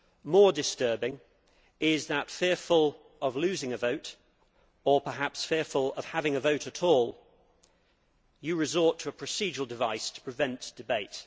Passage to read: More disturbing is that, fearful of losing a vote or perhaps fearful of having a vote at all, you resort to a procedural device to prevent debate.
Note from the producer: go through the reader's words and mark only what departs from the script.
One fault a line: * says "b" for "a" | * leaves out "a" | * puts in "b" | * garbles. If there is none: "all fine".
all fine